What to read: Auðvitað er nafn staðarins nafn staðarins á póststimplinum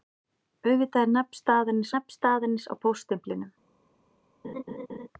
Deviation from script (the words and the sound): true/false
true